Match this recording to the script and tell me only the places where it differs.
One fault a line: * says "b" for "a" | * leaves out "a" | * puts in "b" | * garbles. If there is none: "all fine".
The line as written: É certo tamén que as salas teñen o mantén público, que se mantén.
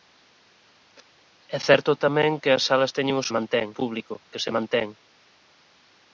all fine